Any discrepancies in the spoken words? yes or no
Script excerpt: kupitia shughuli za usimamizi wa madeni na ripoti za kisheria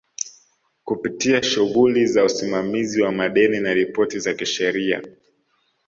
no